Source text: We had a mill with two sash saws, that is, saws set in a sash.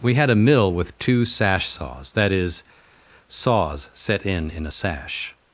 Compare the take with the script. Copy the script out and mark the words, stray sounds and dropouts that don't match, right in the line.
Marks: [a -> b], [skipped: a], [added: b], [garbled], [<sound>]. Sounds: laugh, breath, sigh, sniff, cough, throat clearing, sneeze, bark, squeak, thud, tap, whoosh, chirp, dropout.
We had a mill with two sash saws, that is, saws set in [added: in] a sash.